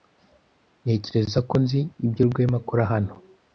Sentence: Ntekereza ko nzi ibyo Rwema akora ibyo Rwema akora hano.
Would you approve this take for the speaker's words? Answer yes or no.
no